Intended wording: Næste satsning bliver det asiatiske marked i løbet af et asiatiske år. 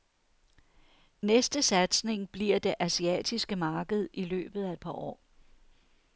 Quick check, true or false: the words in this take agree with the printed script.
false